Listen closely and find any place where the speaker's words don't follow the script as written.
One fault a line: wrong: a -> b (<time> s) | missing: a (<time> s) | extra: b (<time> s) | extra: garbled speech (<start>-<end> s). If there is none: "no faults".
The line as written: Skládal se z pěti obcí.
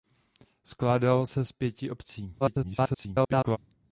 extra: garbled speech (2.4-3.6 s)